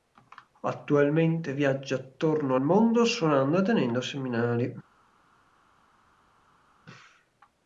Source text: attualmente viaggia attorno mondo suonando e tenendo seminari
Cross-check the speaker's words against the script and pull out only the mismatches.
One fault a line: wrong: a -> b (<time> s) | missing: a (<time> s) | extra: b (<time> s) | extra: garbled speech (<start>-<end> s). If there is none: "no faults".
no faults